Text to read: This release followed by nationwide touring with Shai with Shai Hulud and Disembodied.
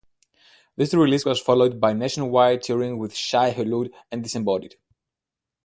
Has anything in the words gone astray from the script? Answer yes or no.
yes